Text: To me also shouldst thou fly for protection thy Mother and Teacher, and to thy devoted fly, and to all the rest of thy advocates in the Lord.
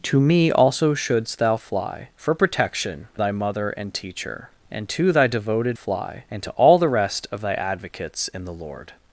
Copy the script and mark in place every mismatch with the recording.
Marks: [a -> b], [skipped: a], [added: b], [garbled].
To me also shouldst thou fly for protection thy Mother and Teacher, and to thy devoted fly, and to all the rest of thy advocates in the Lord.